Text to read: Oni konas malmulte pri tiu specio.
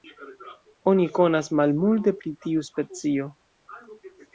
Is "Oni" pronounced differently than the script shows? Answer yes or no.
no